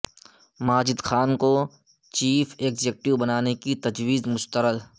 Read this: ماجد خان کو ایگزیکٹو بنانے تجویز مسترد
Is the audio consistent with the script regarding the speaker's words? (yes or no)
no